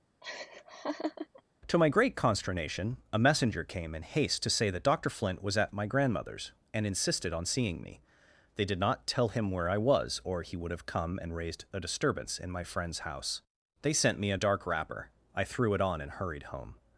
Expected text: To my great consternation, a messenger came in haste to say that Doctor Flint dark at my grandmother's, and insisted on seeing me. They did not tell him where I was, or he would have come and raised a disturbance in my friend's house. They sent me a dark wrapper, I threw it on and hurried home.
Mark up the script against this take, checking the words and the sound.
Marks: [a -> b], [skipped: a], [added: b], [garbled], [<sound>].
[laugh] To my great consternation, a messenger came in haste to say that Doctor Flint [dark -> was] at my grandmother's, and insisted on seeing me. They did not tell him where I was, or he would have come and raised a disturbance in my friend's house. They sent me a dark wrapper, I threw it on and hurried home.